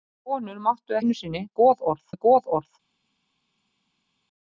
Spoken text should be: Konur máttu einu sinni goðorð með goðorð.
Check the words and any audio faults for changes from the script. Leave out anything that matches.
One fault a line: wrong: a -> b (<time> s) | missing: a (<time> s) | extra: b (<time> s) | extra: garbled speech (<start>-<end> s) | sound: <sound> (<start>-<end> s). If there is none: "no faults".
no faults